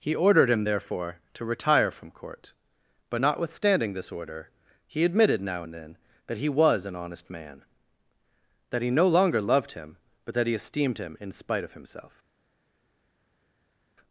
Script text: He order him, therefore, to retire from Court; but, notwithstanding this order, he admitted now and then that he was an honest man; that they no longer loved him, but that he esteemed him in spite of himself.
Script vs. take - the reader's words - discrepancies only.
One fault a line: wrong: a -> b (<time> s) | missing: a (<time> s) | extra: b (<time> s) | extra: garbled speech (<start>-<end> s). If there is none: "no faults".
wrong: order -> ordered (0.1 s)
wrong: they -> he (8.8 s)